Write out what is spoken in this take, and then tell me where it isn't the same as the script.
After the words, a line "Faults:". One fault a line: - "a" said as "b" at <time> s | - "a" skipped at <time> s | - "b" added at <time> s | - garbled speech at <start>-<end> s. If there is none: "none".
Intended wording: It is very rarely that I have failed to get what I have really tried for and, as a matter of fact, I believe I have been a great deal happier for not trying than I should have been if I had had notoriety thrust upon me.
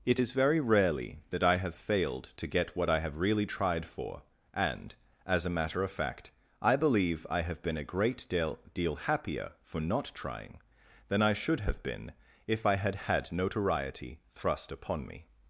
It is very rarely that I have failed to get what I have really tried for and, as a matter of fact, I believe I have been a great deal deal happier for not trying than I should have been if I had had notoriety thrust upon me.
Faults:
- "deal" added at 8.7 s